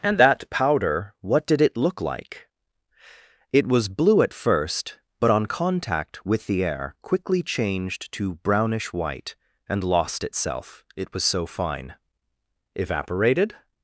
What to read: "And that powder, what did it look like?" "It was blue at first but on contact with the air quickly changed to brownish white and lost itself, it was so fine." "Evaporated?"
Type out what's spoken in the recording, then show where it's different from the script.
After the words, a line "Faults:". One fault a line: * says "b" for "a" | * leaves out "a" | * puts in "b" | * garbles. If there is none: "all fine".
"And that powder, what did it look like?" "It was blue at first but on contact with the air quickly changed to brownish white and lost itself, it was so fine." "Evaporated?"
Faults:
all fine